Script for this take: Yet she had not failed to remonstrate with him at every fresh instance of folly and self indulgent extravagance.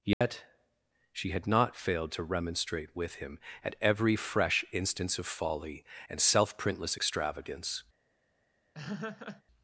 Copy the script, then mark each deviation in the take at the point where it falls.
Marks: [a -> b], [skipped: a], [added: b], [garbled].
Yet she had not failed to remonstrate with him at every fresh instance of folly and self [indulgent -> printless] extravagance.